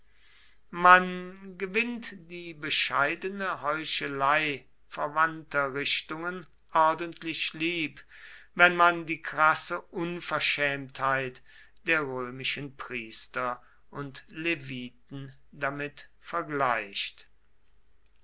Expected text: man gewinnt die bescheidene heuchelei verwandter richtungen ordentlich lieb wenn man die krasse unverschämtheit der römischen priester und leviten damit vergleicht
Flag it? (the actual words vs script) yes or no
no